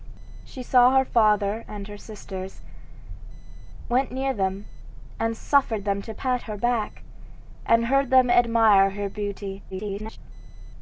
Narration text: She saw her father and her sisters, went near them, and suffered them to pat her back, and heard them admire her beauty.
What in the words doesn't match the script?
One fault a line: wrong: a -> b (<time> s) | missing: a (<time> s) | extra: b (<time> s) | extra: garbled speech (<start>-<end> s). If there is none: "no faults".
extra: garbled speech (9.7-10.2 s)